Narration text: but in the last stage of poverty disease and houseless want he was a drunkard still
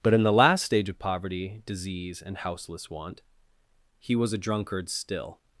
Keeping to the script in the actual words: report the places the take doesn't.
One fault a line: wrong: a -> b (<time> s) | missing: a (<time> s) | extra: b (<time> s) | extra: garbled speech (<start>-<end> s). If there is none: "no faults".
no faults